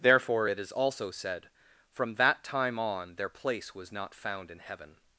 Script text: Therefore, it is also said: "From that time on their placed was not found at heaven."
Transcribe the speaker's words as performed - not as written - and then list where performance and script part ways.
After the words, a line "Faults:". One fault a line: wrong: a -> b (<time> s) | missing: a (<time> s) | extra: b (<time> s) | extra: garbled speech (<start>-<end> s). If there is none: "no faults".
Therefore, it is also said: "From that time on their place was not found in heaven."
Faults:
wrong: placed -> place (3.3 s)
wrong: at -> in (4.5 s)